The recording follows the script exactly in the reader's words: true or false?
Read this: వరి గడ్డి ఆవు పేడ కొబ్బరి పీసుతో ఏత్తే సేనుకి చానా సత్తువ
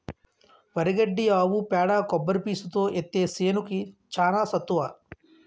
true